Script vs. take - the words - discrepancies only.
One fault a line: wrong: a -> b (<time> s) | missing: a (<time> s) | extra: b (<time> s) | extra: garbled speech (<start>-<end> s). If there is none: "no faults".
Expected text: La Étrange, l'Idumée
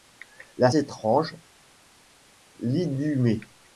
no faults